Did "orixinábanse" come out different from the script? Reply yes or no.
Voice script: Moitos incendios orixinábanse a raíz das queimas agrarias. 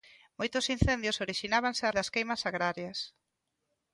no